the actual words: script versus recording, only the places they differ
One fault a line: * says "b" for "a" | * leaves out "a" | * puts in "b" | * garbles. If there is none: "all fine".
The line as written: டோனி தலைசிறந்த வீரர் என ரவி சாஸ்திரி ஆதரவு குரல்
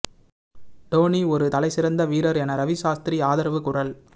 * puts in "ஒரு"